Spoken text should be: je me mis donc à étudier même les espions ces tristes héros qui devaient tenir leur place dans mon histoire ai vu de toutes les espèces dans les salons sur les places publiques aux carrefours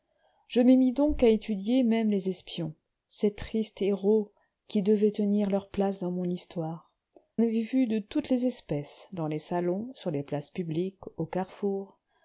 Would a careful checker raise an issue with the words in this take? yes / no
no